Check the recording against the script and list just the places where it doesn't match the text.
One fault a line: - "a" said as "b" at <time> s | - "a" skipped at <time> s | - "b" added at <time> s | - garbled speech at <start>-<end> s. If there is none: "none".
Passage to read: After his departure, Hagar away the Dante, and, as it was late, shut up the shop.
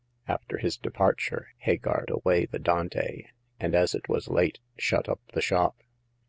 none